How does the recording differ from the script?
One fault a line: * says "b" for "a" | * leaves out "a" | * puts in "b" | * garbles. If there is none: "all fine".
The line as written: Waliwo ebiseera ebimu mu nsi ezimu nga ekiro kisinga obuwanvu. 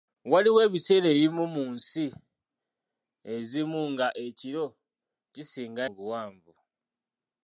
all fine